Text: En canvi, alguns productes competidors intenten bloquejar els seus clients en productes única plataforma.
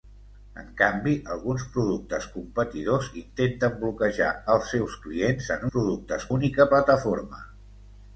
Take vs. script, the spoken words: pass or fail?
pass